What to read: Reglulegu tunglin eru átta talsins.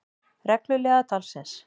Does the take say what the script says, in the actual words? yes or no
no